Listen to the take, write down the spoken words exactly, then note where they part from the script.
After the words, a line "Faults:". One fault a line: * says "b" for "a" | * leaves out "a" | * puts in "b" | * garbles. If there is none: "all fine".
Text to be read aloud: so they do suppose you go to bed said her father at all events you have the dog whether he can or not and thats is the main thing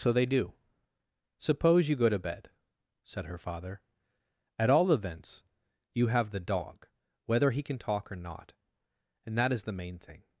so they do suppose you go to bed said her father at all events you have the dog whether he can talk or not and that is the main thing
Faults:
* puts in "talk"
* says "that" for "thats"